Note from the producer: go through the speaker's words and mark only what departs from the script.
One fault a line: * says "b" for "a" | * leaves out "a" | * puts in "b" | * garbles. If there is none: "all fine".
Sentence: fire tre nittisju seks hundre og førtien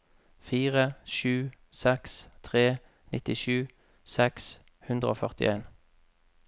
* puts in "sju seks"